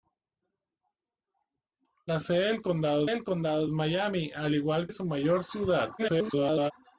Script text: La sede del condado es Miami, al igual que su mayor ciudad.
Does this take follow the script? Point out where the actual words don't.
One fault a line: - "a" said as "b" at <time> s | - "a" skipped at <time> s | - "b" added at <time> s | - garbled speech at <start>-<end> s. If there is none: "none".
- "del condado" added at 3.1 s
- "que" skipped at 4.9 s
- garbled speech at 6.0-6.7 s